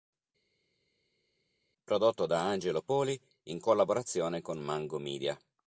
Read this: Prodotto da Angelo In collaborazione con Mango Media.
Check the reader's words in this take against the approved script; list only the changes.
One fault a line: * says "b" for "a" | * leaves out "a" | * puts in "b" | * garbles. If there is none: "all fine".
* puts in "Poli"